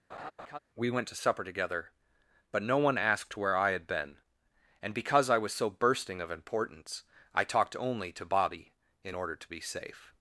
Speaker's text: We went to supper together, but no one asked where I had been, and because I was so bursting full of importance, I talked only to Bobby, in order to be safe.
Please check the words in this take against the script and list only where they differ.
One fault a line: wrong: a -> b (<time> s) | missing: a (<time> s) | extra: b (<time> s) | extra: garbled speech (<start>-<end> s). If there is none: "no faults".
missing: full (6.2 s)